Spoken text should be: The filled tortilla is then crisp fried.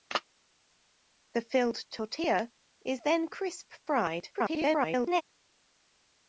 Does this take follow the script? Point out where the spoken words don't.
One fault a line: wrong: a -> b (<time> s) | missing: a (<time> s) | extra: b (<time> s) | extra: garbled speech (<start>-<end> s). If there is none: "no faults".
extra: garbled speech (4.3-5.2 s)